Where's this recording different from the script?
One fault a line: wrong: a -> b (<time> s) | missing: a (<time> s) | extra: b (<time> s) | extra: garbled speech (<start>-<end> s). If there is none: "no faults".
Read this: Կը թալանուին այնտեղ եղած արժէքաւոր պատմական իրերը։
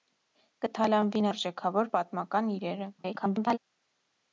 missing: այնտեղ եղած (1.2 s)
extra: garbled speech (3.0-3.6 s)